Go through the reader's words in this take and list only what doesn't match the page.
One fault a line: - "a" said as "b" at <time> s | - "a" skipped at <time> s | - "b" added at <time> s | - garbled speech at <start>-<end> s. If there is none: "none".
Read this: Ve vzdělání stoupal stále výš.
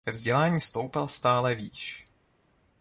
none